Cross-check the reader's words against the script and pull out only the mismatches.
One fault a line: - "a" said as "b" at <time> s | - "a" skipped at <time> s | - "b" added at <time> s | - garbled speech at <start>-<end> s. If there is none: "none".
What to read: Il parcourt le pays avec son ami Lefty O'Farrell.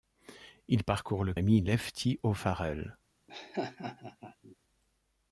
- "pays avec son" skipped at 1.3 s